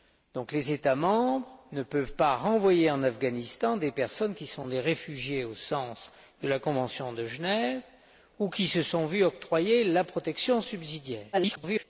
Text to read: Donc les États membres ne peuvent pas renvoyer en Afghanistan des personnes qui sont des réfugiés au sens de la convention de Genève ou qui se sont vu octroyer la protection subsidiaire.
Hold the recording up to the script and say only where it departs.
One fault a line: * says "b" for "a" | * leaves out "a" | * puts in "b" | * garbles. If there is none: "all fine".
* garbles